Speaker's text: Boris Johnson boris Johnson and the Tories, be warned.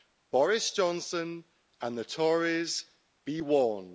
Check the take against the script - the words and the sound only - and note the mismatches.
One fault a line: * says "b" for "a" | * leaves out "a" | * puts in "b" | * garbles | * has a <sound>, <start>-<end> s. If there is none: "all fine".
* leaves out "boris Johnson"